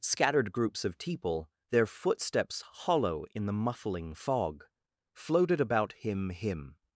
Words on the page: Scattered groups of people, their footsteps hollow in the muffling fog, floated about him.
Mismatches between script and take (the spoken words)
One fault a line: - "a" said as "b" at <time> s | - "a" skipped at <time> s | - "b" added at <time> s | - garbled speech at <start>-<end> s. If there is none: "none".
- "him" added at 6.3 s